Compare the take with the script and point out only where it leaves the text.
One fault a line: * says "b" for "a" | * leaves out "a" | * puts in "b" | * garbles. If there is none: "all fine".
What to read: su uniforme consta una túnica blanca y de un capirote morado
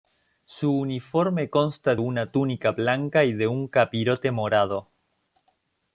all fine